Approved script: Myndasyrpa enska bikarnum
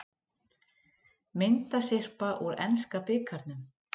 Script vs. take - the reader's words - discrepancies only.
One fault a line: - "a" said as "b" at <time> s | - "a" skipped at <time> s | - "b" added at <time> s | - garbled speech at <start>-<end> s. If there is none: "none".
- "úr" added at 2.5 s